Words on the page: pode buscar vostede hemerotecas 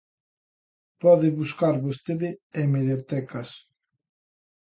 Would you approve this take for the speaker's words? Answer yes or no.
yes